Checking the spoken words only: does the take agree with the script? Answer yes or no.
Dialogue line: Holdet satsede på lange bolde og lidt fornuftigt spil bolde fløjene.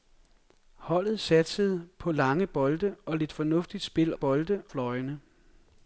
yes